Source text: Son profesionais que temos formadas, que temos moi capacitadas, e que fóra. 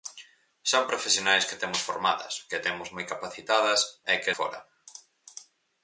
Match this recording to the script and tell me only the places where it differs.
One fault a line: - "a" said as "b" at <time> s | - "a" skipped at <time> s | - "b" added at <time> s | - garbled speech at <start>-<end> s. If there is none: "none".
none